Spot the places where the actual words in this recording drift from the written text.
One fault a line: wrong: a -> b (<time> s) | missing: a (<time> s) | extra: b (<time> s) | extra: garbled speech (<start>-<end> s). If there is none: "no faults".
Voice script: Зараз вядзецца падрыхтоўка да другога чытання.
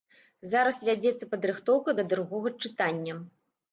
no faults